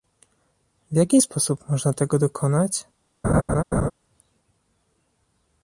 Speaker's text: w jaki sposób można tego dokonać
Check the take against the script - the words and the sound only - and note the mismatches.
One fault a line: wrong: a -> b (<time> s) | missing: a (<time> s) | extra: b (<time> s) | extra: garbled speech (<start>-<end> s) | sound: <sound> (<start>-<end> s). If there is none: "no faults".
sound: laugh (3.2-3.9 s)